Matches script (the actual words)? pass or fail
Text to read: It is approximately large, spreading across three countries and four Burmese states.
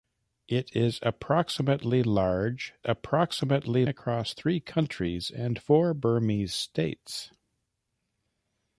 fail